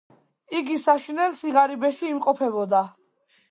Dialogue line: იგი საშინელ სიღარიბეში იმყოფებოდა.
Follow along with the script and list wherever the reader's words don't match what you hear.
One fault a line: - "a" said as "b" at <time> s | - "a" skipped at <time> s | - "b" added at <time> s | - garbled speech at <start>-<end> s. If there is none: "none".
none